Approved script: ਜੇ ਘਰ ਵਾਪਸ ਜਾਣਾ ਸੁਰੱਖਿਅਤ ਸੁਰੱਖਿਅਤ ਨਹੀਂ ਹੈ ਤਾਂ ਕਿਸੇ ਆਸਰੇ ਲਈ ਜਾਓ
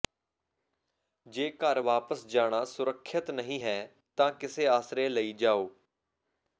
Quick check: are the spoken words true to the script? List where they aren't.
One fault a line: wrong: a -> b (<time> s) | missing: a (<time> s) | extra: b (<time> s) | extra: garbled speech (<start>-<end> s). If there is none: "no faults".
missing: ਸੁਰੱਖਿਅਤ (3.3 s)